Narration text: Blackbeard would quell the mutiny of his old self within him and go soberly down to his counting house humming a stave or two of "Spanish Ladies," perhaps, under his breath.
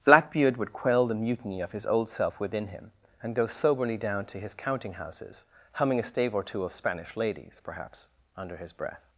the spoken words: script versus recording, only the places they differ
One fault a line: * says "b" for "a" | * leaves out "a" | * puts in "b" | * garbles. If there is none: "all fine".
* says "houses" for "house"